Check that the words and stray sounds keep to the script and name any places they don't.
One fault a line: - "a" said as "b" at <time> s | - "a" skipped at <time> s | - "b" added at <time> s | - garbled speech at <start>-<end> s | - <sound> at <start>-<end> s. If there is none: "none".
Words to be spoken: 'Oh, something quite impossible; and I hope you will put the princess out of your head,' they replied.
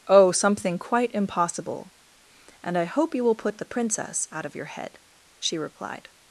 - "they" said as "she" at 5.4 s